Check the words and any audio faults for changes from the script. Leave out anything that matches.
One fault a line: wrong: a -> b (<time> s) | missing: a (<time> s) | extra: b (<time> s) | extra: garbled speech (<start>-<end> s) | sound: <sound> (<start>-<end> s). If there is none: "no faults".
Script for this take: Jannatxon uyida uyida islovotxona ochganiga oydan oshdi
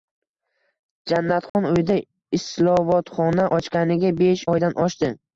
sound: dropout (1.5-1.5 s)
missing: uyida (2.0 s)
extra: besh (4.2 s)